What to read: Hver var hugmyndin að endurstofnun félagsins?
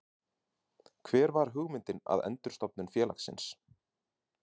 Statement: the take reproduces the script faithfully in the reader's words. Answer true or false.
true